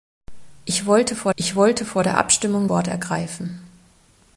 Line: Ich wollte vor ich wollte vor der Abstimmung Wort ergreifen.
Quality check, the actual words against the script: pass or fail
pass